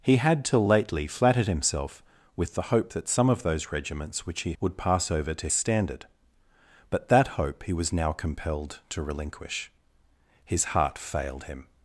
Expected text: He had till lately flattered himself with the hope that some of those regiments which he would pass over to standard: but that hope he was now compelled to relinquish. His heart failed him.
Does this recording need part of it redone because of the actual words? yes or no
no